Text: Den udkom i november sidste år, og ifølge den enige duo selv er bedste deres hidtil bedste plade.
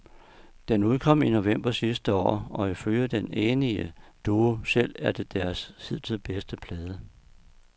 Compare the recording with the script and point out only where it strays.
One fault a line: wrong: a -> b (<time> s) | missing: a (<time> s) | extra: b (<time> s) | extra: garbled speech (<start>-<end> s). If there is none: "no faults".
wrong: bedste -> det (5.1 s)